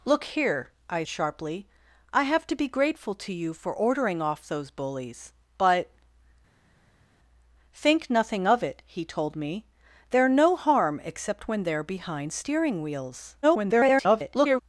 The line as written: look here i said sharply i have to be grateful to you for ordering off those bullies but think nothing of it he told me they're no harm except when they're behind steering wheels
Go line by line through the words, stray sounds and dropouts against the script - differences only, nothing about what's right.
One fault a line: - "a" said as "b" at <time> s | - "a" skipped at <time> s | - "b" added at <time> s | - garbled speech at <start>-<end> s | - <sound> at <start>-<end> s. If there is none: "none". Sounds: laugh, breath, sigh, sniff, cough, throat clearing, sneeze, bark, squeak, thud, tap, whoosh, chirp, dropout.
- "said" skipped at 1.0 s
- garbled speech at 13.4-14.6 s